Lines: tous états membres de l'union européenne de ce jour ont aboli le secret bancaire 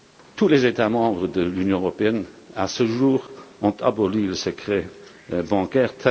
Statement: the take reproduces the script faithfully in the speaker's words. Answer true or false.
false